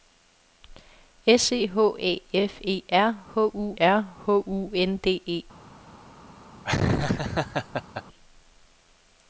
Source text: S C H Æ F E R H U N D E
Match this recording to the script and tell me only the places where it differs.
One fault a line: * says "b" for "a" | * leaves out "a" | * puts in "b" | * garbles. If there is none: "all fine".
* puts in "R H U"